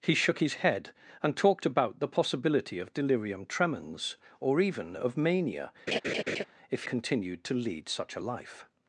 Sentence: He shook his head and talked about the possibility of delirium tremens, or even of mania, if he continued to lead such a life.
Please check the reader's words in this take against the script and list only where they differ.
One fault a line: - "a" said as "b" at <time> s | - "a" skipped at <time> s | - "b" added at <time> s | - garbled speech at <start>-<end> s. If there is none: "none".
- "he" skipped at 6.8 s